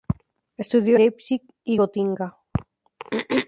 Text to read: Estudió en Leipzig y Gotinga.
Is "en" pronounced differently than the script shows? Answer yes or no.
yes